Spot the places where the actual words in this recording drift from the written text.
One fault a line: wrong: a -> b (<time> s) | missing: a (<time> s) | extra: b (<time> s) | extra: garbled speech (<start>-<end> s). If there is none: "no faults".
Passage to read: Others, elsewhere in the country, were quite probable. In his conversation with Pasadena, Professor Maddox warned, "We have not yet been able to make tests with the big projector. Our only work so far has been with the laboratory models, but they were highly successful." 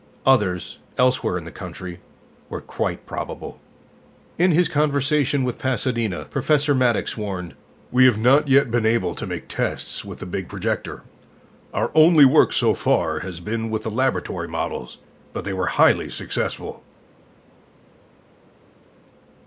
no faults